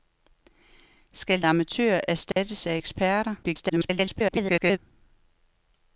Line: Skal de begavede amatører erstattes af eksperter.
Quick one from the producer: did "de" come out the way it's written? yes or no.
no